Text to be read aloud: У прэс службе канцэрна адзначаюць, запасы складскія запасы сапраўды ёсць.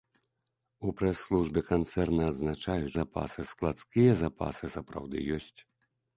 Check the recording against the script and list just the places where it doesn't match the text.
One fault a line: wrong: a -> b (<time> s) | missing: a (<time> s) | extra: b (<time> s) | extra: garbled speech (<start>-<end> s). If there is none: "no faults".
no faults